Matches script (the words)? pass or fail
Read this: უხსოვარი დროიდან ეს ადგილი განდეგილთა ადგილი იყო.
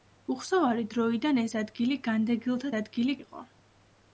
pass